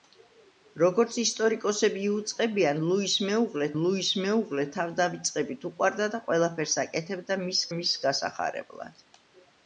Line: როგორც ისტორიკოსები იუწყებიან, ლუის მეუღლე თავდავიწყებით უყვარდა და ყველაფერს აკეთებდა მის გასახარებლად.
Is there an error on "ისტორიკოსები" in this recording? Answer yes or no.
no